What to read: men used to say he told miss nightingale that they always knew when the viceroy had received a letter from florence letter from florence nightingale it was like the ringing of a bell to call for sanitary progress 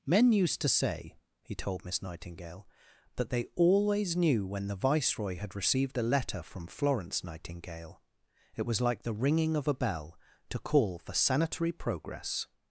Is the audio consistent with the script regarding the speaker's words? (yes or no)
no